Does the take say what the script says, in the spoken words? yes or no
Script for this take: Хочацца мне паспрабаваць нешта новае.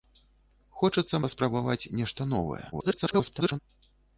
no